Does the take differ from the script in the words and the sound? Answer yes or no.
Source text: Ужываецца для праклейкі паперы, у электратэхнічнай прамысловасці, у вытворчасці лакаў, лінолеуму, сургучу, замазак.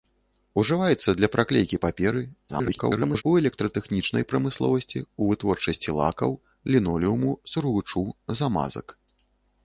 yes